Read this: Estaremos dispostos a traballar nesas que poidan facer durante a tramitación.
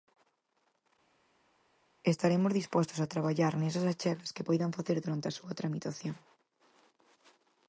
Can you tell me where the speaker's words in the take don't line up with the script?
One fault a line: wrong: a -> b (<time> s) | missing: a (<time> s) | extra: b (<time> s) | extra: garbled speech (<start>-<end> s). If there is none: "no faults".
extra: achegas (3.9 s)
extra: súa (5.4 s)